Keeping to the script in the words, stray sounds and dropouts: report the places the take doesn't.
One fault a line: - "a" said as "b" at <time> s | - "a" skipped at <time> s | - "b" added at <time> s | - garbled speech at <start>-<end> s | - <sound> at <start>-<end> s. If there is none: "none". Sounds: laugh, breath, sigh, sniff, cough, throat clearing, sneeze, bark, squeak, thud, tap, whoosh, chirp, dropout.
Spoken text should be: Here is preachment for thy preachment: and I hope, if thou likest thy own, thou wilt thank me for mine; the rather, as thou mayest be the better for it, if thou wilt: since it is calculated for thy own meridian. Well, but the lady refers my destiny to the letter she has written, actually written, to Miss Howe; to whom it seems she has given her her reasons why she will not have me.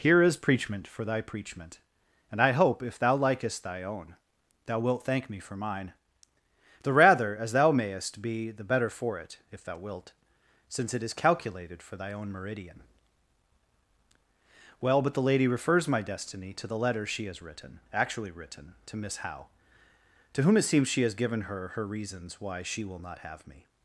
none